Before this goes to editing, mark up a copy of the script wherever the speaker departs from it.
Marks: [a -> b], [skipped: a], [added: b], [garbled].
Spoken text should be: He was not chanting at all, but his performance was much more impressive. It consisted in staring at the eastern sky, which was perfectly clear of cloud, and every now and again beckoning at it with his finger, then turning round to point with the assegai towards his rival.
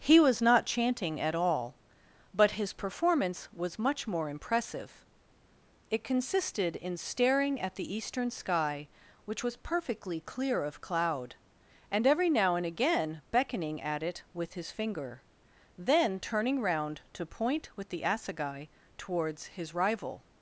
He was not chanting at all, but his performance was much more impressive. It consisted in staring at the eastern sky, which was perfectly clear of cloud, and every now and again beckoning at it with his finger, then turning round to point with the assegai towards his rival.